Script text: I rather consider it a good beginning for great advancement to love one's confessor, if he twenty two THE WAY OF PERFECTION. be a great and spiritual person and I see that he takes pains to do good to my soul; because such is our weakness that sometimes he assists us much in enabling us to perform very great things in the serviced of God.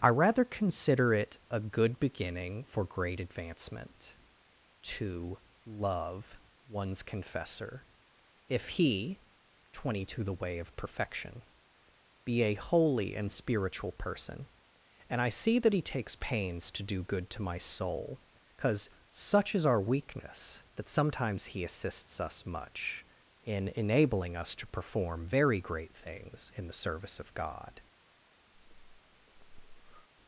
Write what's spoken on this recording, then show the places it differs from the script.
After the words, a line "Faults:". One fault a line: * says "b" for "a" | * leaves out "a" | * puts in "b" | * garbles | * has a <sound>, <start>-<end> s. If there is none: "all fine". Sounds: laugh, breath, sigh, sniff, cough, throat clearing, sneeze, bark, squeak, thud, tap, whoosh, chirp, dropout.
I rather consider it a good beginning for great advancement to love one's confessor, if he twenty two THE WAY OF PERFECTION. be a holy and spiritual person and I see that he takes pains to do good to my soul; because such is our weakness that sometimes he assists us much in enabling us to perform very great things in the service of God.
Faults:
* says "holy" for "great"
* says "service" for "serviced"
* has a breath, 28.5-30.1 s